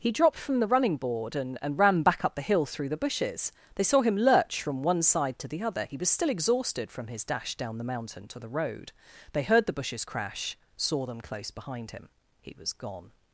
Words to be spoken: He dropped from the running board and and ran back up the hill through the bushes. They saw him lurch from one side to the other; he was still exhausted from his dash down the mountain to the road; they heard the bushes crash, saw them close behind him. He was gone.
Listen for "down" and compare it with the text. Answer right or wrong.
right